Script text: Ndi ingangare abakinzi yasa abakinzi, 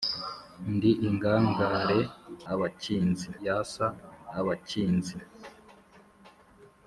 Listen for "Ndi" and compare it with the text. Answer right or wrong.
right